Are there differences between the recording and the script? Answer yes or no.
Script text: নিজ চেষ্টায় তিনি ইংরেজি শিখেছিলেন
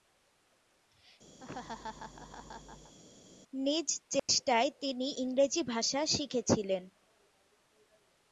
yes